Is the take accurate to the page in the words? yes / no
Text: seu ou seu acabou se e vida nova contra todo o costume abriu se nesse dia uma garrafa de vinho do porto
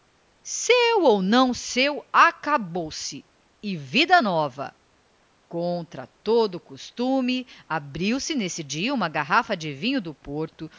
no